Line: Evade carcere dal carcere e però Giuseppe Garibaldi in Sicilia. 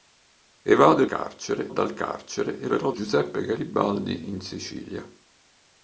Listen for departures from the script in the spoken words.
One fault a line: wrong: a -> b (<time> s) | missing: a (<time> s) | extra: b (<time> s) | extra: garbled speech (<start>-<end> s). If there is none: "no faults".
no faults